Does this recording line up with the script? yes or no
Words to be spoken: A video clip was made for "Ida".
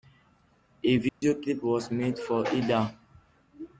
yes